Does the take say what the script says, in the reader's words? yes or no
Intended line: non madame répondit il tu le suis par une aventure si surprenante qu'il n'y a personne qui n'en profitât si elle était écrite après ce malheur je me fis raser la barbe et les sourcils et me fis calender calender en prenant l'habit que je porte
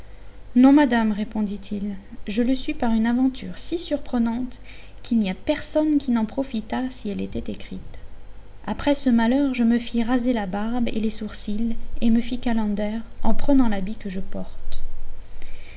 no